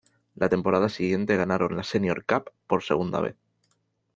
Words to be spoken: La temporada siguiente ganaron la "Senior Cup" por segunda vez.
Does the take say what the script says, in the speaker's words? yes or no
yes